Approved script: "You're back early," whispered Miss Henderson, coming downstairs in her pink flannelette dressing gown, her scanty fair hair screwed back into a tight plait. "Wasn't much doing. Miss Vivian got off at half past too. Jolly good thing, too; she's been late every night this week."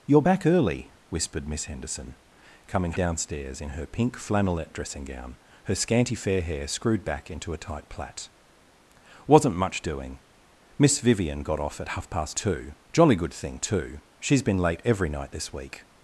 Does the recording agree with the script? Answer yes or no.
yes